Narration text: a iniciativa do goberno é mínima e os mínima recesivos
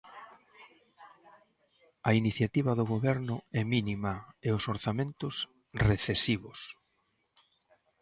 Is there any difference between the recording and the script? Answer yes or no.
yes